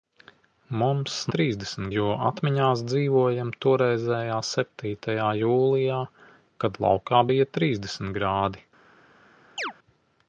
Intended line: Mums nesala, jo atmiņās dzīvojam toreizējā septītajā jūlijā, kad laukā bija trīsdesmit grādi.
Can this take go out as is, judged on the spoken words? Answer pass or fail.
fail